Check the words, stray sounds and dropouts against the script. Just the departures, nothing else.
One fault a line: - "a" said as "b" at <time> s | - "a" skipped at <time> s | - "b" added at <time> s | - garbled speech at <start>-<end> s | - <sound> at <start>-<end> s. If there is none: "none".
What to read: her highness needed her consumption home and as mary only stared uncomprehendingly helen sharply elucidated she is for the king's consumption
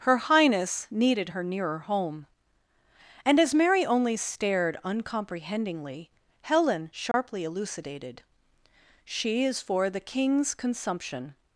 - "consumption" said as "nearer" at 1.4 s
- dropout at 7.1-7.1 s